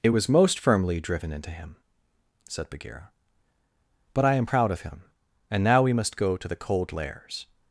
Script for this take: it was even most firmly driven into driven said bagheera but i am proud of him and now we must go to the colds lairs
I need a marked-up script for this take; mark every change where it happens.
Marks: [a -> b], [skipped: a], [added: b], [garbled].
it was [skipped: even] most firmly driven into [driven -> him] said bagheera but i am proud of him and now we must go to the [colds -> cold] lairs